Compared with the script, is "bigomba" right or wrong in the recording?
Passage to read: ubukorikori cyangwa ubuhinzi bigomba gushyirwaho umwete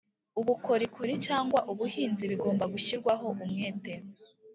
right